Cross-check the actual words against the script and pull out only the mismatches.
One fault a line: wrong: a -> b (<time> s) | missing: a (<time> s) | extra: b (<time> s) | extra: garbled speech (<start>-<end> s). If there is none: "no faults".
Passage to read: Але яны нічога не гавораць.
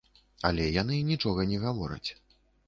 no faults